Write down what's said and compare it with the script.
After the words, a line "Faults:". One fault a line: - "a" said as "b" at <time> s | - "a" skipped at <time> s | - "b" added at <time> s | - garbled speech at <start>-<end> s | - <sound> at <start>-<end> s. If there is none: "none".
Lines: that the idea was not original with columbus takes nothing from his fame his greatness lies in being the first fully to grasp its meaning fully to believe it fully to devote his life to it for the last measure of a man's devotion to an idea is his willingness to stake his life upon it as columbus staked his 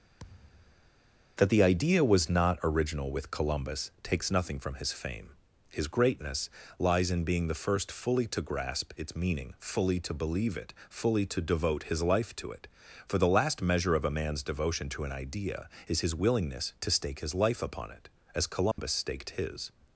that the idea was not original with columbus takes nothing from his fame his greatness lies in being the first fully to grasp its meaning fully to believe it fully to devote his life to it for the last measure of a man's devotion to an idea is his willingness to stake his life upon it as columbus staked his
Faults:
- thud at 0.2-0.9 s
- dropout at 18.7-18.8 s